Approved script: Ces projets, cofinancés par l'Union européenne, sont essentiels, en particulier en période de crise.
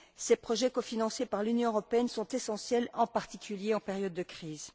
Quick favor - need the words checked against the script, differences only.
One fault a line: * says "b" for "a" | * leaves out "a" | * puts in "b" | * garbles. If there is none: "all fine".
all fine